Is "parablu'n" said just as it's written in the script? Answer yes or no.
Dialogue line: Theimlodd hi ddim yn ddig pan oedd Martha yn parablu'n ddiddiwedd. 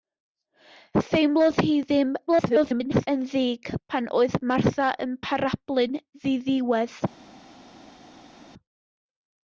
yes